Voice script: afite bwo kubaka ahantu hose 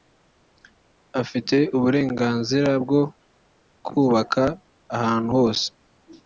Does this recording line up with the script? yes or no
no